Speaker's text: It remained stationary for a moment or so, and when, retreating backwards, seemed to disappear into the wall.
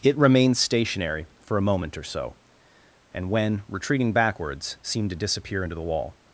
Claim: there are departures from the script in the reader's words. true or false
false